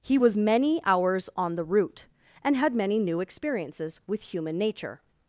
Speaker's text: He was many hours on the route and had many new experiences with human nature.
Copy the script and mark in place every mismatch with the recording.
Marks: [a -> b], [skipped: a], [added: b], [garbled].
He was many hours on the route and had many new experiences with human nature.